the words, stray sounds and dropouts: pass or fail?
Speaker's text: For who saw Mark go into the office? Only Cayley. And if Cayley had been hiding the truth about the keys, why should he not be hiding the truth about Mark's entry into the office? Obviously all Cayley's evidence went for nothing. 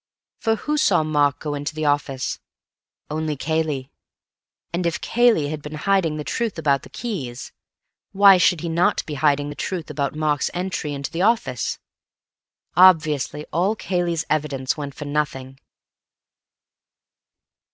pass